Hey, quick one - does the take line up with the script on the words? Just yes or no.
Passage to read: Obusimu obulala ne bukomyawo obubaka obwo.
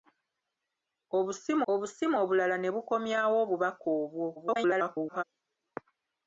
no